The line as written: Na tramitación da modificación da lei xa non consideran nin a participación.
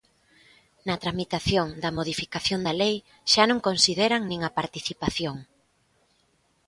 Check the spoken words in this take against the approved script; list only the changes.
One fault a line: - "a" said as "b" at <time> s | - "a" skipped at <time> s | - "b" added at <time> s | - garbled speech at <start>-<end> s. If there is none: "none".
none